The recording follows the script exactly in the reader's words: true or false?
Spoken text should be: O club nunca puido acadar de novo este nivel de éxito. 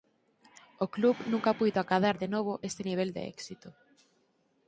true